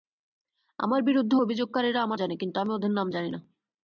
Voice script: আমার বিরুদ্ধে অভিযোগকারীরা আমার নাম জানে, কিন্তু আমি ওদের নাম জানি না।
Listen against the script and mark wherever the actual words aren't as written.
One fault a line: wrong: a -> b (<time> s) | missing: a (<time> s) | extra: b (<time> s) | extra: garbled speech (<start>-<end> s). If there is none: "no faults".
missing: নাম (2.2 s)